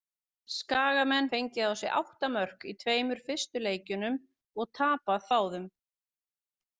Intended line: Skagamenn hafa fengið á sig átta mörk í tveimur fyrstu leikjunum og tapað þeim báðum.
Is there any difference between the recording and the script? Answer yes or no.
yes